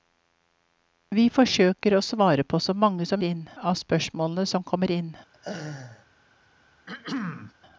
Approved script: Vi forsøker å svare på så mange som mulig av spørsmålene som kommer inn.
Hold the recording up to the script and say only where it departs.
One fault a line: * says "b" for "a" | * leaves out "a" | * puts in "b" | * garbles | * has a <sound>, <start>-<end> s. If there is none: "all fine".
* says "inn" for "mulig"
* has a laugh, 5.3-6.1 s
* has a throat clearing, 6.9-7.5 s